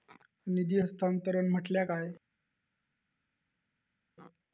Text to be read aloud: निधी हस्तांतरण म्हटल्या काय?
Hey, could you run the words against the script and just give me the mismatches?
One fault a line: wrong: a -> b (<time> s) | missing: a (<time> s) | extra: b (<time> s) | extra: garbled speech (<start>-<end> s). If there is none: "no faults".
no faults